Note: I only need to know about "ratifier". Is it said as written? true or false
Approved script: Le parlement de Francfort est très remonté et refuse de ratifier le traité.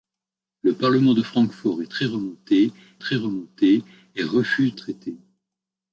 false